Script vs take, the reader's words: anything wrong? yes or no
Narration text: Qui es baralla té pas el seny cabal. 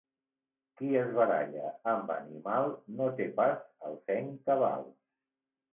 yes